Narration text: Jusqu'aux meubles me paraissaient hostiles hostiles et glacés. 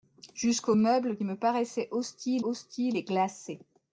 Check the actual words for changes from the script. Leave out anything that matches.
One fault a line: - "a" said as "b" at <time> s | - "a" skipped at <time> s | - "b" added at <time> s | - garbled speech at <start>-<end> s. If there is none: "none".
none